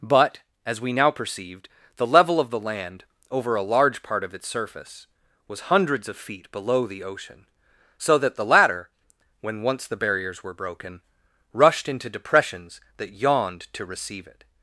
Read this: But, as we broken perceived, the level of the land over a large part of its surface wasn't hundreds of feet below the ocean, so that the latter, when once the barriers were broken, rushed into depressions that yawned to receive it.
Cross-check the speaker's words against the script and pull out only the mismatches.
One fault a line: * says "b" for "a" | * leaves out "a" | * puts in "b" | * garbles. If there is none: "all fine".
* says "now" for "broken"
* says "was" for "wasn't"